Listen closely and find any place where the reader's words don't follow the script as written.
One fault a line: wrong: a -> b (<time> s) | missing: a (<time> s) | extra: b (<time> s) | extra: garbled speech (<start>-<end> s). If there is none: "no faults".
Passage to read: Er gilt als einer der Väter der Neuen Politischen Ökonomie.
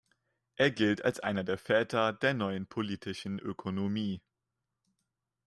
no faults